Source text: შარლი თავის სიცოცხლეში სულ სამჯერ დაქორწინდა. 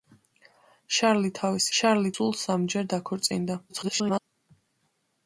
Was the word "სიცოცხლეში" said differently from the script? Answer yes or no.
yes